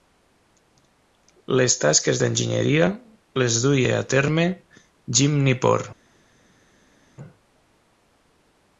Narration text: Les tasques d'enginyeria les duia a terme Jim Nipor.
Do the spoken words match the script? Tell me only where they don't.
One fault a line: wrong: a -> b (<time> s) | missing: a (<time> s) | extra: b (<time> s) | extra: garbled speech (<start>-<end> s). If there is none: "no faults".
no faults